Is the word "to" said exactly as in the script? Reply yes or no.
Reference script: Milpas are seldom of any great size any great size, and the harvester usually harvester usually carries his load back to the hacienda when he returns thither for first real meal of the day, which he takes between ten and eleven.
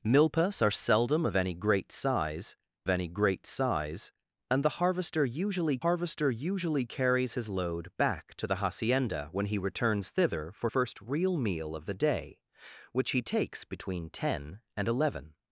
yes